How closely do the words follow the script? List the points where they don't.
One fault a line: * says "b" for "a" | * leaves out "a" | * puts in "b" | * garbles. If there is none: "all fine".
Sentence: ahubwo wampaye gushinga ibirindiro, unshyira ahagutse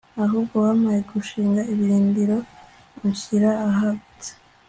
all fine